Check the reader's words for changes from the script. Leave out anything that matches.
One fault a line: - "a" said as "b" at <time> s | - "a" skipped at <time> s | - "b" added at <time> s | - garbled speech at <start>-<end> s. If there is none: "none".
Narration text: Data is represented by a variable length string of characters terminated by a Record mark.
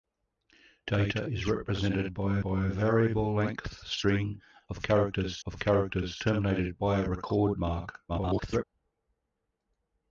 - "by" added at 2.4 s
- "of characters" added at 5.4 s
- garbled speech at 8.1-8.6 s